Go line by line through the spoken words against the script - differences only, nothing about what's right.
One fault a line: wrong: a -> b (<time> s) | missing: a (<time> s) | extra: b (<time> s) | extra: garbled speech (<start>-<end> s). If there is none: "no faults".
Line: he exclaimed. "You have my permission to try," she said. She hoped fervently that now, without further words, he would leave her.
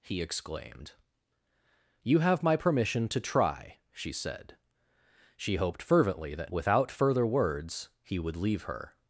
missing: now (6.5 s)